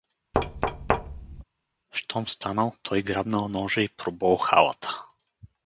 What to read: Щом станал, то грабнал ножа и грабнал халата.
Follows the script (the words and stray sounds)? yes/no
no